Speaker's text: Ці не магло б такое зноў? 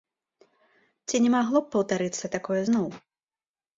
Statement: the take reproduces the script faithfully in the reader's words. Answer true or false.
false